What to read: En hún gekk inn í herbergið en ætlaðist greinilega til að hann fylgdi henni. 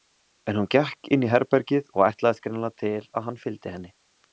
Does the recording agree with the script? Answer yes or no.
no